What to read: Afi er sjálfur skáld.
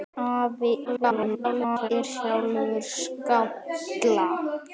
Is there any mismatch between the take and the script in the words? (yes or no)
yes